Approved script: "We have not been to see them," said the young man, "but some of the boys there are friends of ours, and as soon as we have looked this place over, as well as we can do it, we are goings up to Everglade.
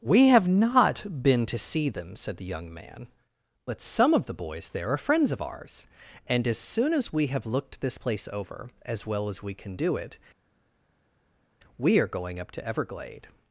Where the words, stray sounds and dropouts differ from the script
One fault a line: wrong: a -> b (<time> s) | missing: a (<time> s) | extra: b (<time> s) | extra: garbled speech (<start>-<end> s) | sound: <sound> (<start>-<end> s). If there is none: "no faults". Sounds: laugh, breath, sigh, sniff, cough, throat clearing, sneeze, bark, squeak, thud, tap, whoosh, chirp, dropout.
wrong: goings -> going (12.1 s)